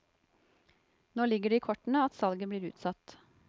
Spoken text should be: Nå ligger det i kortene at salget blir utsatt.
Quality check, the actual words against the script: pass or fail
pass